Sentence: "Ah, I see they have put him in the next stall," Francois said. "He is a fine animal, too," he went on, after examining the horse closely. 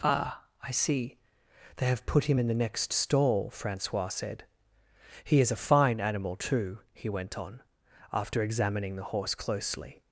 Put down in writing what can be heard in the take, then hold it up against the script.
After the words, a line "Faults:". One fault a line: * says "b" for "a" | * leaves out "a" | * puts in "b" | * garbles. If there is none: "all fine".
"Ah, I see they have put him in the next stall," Francois said. "He is a fine animal, too," he went on, after examining the horse closely.
Faults:
all fine